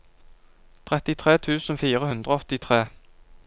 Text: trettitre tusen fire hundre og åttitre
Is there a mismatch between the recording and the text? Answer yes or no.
no